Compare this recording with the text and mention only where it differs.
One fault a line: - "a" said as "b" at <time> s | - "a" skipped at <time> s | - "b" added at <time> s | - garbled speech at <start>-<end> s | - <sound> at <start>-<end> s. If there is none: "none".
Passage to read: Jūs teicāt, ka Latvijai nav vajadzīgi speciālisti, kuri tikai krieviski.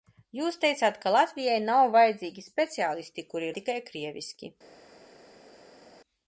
none